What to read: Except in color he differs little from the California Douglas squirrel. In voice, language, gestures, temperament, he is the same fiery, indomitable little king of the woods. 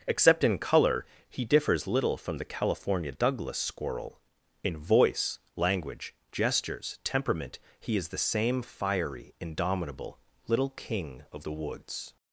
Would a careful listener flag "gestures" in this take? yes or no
no